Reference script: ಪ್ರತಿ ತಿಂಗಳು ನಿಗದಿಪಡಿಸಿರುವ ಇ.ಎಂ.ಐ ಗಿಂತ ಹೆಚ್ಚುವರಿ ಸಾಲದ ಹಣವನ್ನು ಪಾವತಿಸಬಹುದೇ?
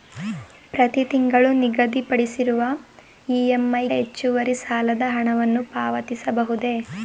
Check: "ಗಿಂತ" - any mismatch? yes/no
yes